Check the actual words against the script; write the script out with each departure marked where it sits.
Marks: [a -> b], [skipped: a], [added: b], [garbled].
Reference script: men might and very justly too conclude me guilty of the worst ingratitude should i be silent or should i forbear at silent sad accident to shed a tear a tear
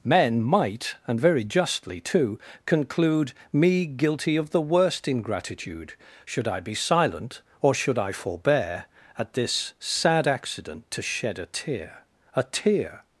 men might and very justly too conclude me guilty of the worst ingratitude should i be silent or should i forbear at [silent -> this] sad accident to shed a tear a tear